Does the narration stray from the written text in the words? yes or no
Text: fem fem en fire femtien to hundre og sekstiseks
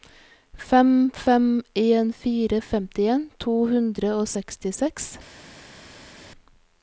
no